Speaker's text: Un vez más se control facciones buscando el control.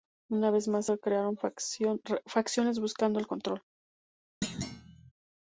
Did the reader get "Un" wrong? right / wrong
wrong